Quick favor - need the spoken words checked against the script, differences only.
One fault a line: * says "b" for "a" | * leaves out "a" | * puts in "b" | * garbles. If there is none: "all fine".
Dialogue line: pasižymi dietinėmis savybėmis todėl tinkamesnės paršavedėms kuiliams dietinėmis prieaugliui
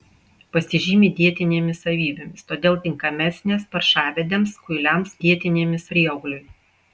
all fine